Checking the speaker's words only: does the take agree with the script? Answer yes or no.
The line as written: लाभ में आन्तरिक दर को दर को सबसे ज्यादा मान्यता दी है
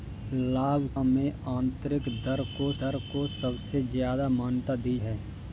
yes